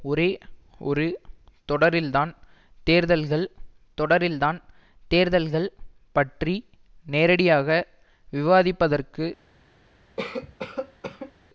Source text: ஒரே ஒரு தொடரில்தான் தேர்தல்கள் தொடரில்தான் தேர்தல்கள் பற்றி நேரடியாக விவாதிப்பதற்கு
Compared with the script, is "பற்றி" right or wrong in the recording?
right